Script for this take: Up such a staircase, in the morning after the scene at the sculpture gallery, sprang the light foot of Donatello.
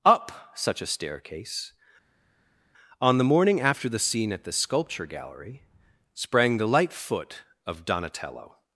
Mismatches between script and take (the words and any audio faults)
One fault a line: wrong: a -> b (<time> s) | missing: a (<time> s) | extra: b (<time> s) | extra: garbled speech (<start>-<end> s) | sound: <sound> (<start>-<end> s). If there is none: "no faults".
wrong: in -> on (3.0 s)